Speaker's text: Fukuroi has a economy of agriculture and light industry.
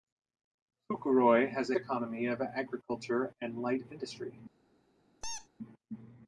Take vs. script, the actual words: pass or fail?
pass